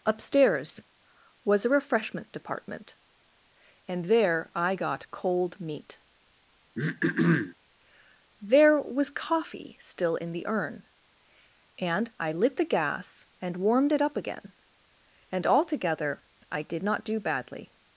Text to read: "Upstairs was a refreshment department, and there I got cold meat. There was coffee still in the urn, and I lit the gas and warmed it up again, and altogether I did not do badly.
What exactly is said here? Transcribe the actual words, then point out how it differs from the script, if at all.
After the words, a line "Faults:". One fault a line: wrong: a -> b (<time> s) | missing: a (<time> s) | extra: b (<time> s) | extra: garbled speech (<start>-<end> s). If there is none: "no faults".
"Upstairs was a refreshment department, and there I got cold meat. There was coffee still in the urn, and I lit the gas and warmed it up again, and altogether I did not do badly.
Faults:
no faults